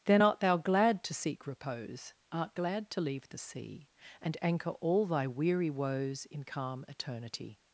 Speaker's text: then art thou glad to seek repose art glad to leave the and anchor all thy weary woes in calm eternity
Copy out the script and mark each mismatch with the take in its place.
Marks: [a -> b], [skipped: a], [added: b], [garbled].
then art thou glad to seek repose art glad to leave the [added: sea] and anchor all thy weary woes in calm eternity